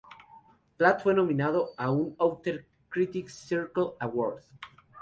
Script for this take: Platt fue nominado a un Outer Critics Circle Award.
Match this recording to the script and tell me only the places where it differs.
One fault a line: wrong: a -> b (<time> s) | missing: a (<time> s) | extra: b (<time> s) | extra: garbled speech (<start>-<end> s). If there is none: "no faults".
no faults